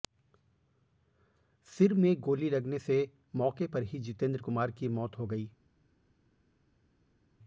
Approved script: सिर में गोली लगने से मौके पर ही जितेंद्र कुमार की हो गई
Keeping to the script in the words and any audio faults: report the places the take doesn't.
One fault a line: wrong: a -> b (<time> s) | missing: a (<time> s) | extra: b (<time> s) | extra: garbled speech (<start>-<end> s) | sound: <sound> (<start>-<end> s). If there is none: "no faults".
extra: मौत (4.9 s)